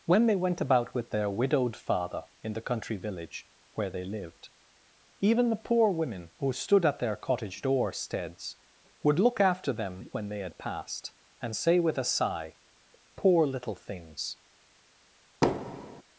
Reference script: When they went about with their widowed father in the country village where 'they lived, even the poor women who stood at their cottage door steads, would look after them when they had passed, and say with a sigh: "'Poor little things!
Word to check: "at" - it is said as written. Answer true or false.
true